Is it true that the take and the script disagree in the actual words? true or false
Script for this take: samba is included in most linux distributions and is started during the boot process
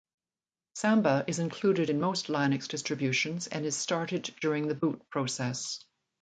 false